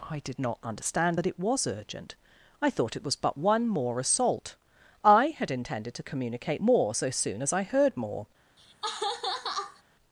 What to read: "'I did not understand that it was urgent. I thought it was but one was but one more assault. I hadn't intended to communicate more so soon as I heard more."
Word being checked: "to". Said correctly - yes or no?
yes